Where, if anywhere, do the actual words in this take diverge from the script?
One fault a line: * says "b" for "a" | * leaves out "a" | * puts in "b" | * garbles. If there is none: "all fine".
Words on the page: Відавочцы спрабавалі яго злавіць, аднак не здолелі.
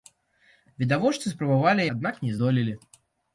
* leaves out "яго злавіць"